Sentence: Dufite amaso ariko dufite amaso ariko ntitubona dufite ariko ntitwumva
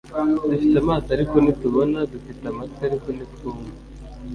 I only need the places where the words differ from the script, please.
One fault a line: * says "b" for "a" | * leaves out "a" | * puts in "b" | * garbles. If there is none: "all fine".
* leaves out "dufite amaso ariko"
* puts in "amatwi"